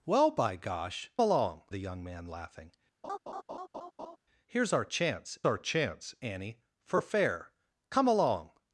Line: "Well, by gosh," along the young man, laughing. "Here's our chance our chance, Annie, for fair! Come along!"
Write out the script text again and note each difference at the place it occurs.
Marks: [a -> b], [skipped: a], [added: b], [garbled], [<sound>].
"Well, by gosh," along the young man, laughing. [laugh] "Here's our chance our chance, Annie, for fair! Come along!"